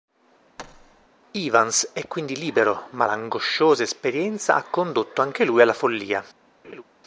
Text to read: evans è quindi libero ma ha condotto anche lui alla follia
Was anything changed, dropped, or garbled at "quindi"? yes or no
no